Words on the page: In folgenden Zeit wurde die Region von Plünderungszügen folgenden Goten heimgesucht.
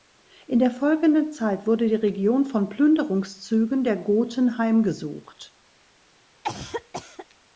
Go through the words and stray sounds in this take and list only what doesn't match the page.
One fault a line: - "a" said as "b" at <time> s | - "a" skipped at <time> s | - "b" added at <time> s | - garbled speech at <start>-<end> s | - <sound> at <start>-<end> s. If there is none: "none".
- "der" added at 0.6 s
- "folgenden" said as "der" at 3.8 s
- cough at 6.4-7.3 s